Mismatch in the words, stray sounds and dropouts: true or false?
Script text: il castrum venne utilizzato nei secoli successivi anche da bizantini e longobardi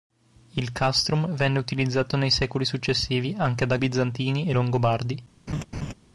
true